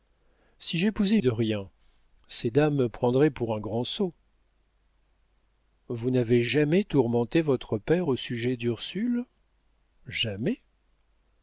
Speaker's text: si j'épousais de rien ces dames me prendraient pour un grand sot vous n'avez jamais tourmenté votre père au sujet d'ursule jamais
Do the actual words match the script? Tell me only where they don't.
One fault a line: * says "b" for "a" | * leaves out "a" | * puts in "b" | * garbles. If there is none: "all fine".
all fine